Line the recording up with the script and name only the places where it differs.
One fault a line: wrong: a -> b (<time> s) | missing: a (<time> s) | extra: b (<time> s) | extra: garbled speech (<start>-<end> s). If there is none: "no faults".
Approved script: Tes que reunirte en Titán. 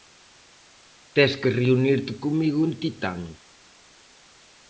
extra: comigo (2.2 s)